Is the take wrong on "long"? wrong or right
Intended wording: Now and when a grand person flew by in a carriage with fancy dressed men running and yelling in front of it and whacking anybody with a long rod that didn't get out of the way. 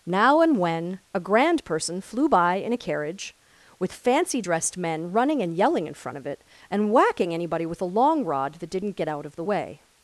right